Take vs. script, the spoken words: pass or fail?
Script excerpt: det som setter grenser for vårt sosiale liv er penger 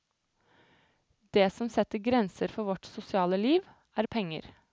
pass